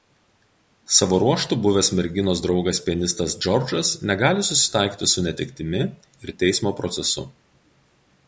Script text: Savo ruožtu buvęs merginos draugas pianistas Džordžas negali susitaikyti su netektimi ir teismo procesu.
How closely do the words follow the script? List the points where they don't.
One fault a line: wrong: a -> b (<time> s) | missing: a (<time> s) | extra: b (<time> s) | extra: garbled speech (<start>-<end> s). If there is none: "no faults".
no faults